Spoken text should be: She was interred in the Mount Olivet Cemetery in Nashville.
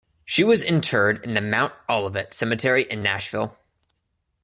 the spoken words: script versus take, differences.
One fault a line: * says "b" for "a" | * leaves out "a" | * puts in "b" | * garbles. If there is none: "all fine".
all fine